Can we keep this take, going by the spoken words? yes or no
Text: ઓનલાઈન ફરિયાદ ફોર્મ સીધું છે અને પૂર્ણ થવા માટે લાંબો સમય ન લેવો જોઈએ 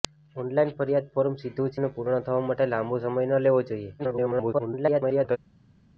no